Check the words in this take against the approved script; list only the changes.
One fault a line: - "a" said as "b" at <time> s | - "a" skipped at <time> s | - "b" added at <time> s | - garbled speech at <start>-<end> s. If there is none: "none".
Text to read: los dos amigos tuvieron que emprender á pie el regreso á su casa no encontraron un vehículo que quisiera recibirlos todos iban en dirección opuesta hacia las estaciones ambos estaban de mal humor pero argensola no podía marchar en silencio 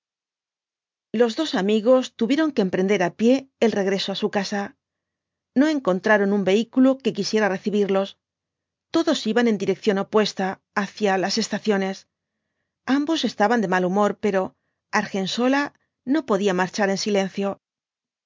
none